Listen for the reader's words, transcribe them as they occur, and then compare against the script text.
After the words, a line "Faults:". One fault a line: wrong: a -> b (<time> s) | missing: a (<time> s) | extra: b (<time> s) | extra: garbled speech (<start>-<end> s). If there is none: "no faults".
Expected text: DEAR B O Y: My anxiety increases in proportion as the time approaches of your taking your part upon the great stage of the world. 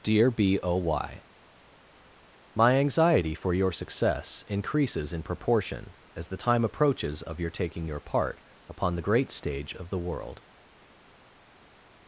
DEAR B O Y: My anxiety for your success increases in proportion as the time approaches of your taking your part upon the great stage of the world.
Faults:
extra: for your success (3.4 s)